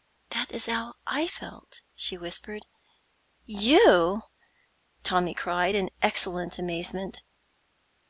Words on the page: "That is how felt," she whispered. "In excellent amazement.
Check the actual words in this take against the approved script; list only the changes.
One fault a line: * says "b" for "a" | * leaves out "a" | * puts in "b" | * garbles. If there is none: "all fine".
* puts in "I"
* puts in "You Tommy cried"